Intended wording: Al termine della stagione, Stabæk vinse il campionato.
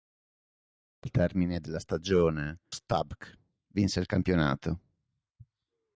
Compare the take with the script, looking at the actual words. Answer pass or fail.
pass